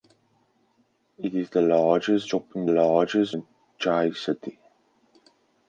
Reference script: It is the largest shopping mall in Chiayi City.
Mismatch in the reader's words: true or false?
true